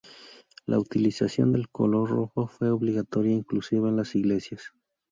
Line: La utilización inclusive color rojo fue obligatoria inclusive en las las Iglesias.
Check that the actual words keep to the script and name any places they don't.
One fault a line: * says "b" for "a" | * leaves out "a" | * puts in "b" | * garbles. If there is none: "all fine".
* says "del" for "inclusive"
* leaves out "las"